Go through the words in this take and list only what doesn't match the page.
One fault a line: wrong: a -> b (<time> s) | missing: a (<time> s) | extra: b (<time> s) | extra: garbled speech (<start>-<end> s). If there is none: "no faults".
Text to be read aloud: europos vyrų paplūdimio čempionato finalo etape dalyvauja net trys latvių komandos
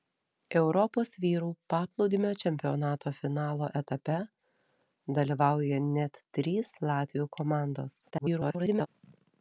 extra: garbled speech (8.1-8.9 s)